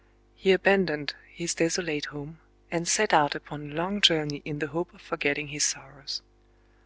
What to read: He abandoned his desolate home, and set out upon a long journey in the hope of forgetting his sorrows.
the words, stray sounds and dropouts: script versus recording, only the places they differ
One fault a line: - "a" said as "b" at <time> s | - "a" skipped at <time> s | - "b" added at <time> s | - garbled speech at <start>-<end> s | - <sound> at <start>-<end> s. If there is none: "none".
none